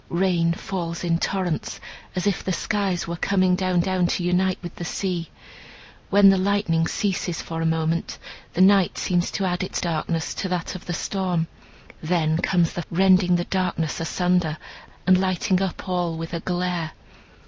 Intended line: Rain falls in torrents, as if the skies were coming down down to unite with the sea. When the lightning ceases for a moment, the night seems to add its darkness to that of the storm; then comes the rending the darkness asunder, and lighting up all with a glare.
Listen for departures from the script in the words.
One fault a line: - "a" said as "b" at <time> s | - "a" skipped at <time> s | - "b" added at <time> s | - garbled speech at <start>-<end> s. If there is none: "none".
none